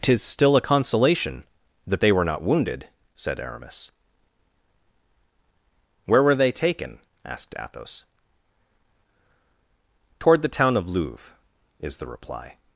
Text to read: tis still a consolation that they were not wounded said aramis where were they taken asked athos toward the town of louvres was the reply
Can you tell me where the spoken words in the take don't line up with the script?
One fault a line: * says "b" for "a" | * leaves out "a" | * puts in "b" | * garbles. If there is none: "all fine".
* says "is" for "was"